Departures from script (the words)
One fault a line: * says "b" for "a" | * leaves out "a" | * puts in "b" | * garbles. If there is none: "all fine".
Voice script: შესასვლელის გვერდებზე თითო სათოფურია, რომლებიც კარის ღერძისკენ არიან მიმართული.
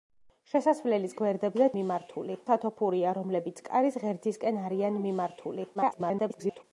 * says "მიმართული" for "თითო"
* garbles